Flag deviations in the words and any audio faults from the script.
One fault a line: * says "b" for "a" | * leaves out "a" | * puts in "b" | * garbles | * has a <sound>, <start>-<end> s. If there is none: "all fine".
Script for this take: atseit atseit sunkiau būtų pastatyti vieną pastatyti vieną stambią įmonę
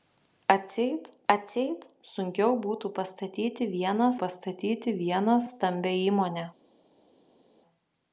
all fine